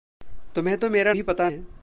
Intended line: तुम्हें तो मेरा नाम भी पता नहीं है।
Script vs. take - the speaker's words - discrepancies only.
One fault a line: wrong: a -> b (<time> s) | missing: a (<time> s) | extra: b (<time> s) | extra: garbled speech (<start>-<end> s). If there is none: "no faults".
missing: नाम (1.1 s)
missing: नहीं (1.5 s)